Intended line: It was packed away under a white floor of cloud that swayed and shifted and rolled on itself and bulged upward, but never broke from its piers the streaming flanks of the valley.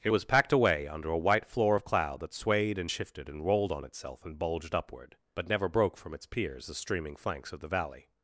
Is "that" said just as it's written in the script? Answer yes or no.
yes